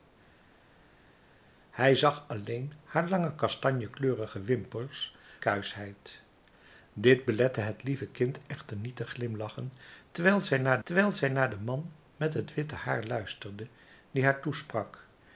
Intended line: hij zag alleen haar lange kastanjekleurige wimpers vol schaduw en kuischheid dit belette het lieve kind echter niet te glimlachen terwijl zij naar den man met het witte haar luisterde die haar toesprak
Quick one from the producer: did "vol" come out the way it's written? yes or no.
no